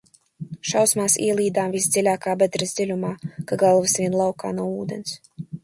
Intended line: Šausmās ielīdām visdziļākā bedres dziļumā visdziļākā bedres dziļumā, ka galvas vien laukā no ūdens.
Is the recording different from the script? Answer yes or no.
yes